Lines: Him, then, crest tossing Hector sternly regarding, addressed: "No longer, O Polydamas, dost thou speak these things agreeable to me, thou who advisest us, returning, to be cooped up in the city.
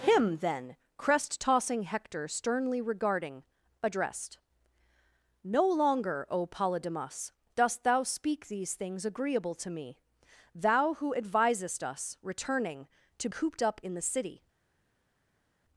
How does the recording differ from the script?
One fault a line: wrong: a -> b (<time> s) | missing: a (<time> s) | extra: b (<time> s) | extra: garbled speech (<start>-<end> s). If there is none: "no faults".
missing: be (13.3 s)